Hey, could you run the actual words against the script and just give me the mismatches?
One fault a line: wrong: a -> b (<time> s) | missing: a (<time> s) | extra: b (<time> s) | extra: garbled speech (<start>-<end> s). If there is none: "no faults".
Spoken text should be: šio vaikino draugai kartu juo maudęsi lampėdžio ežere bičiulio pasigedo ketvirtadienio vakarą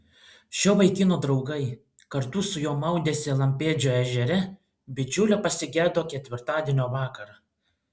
extra: su (2.5 s)